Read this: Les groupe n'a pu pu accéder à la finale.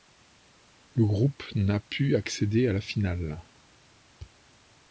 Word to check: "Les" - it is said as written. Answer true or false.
false